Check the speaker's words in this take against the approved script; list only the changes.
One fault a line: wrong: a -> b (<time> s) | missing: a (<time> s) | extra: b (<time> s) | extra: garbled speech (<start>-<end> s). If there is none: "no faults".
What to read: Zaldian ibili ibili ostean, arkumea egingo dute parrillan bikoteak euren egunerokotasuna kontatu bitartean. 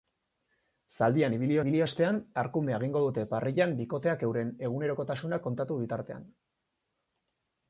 no faults